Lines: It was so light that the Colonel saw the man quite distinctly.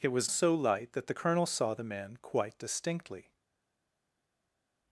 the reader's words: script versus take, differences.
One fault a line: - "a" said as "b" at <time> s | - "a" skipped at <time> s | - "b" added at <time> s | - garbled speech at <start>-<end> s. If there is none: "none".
none